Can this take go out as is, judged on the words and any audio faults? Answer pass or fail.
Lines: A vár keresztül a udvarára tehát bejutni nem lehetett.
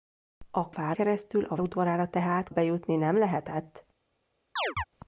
fail